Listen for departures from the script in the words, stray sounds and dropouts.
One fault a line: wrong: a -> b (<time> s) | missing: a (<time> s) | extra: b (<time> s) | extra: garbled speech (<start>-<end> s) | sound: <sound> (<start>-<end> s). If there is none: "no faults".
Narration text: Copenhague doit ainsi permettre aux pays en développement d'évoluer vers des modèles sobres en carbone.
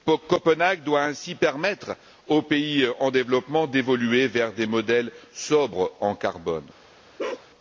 sound: bark (7.2-7.5 s)